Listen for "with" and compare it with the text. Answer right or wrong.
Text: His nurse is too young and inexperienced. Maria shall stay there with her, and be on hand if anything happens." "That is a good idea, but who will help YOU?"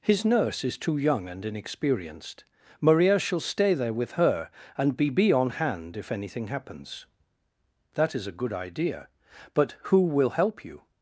right